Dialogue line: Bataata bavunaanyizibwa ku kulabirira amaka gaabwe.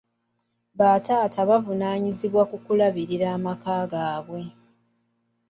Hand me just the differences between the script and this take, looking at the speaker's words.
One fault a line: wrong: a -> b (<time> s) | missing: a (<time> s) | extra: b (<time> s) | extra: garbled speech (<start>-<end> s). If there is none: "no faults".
no faults